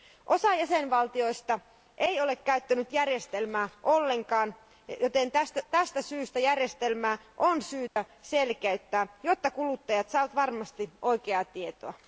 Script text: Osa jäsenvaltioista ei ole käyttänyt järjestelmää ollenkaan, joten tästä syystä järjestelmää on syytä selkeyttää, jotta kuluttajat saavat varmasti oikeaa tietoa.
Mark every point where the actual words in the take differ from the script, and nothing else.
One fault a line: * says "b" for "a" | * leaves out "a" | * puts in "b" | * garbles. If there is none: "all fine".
all fine